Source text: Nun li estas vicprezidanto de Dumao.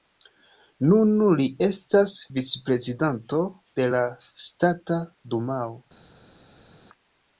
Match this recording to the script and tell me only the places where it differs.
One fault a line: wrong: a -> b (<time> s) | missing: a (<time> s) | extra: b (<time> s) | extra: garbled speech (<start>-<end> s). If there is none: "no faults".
extra: la Ŝtata (4.0 s)